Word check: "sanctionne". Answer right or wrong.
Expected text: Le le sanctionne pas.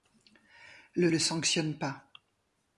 right